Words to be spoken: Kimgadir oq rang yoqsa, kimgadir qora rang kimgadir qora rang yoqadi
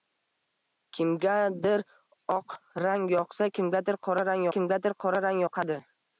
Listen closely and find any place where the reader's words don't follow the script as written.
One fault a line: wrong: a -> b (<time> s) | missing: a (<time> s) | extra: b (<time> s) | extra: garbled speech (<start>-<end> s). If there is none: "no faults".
no faults